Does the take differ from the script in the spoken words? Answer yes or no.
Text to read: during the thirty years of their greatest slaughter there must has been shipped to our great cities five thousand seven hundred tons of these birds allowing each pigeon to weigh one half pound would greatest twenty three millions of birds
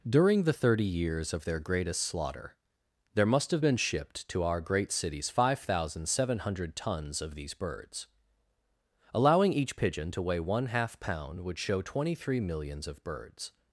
yes